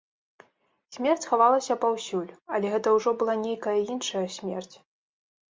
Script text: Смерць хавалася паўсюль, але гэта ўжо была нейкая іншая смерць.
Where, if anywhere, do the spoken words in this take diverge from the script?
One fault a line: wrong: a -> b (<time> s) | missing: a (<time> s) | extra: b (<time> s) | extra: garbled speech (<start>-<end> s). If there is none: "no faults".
no faults